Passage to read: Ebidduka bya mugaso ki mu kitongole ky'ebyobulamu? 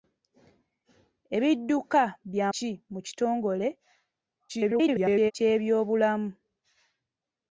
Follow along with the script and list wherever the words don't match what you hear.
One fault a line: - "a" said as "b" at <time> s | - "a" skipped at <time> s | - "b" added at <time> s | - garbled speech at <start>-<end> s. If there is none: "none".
- "mugaso" skipped at 2.5 s
- garbled speech at 4.5-5.3 s